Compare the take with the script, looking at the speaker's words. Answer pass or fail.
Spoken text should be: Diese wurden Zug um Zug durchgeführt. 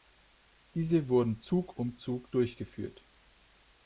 pass